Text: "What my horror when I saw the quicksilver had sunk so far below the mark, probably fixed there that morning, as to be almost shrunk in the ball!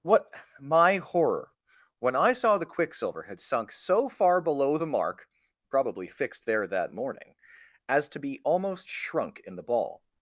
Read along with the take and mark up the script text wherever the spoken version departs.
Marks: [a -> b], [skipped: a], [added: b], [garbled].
"What my horror when I saw the quicksilver had sunk so far below the mark, probably fixed there that morning, as to be almost shrunk in the ball!